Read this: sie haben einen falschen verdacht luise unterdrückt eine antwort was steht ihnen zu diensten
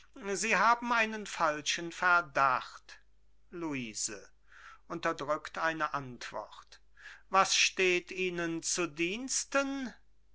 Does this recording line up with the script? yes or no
yes